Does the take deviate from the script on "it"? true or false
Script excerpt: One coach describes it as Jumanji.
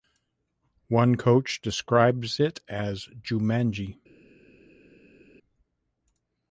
false